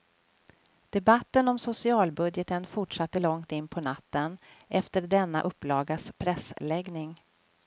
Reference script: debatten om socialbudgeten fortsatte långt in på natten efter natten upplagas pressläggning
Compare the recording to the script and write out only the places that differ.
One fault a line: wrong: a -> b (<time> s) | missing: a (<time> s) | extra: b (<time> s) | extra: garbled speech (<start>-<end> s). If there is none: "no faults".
wrong: natten -> denna (5.0 s)